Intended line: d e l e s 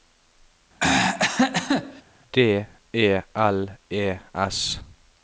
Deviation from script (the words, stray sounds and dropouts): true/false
true